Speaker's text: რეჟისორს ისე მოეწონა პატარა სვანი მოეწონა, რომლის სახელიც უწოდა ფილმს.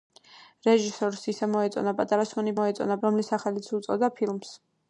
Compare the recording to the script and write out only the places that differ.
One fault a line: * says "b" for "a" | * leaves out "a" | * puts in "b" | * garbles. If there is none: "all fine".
all fine